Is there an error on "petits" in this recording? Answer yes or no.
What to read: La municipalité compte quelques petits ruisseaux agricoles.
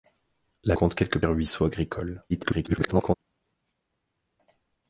yes